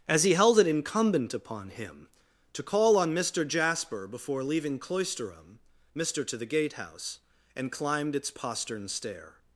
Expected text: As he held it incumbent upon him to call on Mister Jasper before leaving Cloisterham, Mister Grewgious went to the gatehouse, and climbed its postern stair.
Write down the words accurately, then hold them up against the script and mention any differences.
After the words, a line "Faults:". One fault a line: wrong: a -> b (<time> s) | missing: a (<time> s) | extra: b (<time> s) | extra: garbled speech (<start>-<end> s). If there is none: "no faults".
As he held it incumbent upon him to call on Mister Jasper before leaving Cloisterham, Mister to the gatehouse, and climbed its postern stair.
Faults:
missing: Grewgious went (6.2 s)